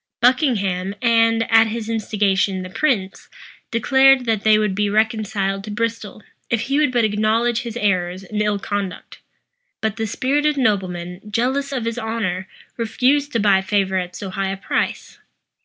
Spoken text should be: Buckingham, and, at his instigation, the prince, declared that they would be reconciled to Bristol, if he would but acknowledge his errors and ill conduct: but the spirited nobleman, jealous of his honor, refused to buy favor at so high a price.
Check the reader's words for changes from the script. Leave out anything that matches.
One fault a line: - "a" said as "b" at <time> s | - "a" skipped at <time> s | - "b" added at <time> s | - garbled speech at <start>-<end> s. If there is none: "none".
none